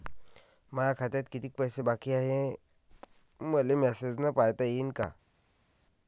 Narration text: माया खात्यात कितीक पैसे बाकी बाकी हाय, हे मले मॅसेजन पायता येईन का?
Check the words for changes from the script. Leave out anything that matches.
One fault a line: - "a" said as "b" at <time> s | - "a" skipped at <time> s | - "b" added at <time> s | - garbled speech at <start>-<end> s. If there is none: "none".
- "बाकी" skipped at 2.1 s